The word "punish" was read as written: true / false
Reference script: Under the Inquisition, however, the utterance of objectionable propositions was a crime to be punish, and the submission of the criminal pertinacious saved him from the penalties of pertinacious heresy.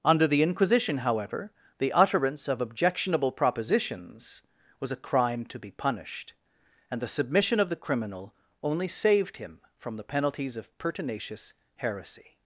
false